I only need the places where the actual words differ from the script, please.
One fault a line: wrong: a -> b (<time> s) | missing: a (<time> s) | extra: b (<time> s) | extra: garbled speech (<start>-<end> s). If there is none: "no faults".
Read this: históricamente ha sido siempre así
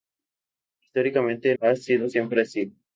no faults